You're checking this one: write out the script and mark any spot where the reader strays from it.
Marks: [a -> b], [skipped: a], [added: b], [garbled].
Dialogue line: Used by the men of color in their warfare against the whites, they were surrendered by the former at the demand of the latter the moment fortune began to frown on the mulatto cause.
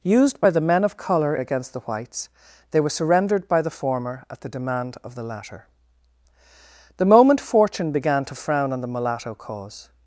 Used by the men of color [skipped: in their warfare] against the whites, they were surrendered by the former at the demand of the latter the moment fortune began to frown on the mulatto cause.